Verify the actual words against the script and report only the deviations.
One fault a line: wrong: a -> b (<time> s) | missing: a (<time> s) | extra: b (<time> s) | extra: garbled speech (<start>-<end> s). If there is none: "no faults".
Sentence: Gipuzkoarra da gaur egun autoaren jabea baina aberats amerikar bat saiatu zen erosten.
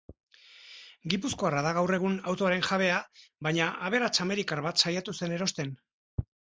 no faults